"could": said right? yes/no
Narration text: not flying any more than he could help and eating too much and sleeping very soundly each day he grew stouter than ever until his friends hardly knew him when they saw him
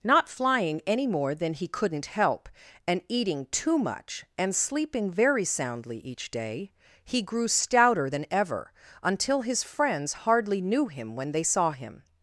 no